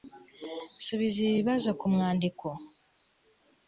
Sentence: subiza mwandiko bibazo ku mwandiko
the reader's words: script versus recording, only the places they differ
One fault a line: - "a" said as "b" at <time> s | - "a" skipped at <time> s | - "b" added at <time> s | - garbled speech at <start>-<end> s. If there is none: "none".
- "mwandiko" said as "ibi" at 1.2 s